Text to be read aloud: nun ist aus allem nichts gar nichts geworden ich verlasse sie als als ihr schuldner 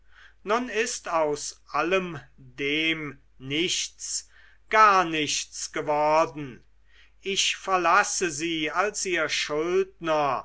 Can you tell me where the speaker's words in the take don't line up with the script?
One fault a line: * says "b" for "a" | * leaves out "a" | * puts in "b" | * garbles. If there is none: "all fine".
* puts in "dem"
* leaves out "als"